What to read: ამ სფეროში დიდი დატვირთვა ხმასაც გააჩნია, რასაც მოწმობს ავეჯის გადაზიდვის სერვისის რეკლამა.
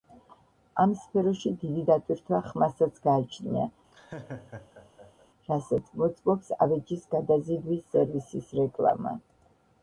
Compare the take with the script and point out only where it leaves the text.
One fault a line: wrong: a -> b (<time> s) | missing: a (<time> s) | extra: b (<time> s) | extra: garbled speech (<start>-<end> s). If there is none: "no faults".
no faults